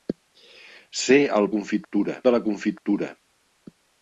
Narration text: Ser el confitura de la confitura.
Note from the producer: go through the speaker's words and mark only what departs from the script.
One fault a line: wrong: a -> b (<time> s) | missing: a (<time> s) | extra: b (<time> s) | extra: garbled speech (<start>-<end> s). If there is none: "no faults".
no faults